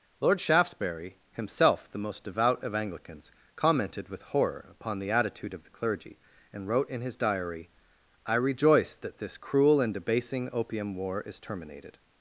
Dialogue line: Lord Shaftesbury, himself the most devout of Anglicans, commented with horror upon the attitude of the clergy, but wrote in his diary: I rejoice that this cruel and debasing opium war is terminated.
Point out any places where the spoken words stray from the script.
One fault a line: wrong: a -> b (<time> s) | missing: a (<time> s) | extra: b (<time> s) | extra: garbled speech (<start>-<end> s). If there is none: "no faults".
wrong: but -> and (6.5 s)